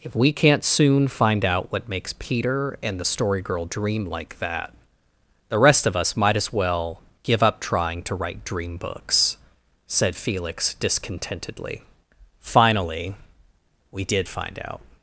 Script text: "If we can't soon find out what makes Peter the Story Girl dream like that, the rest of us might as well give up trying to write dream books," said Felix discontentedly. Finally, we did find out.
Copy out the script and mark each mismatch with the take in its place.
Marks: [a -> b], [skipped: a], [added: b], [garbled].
"If we can't soon find out what makes Peter [added: and] the Story Girl dream like that, the rest of us might as well give up trying to write dream books," said Felix discontentedly. Finally, we did find out.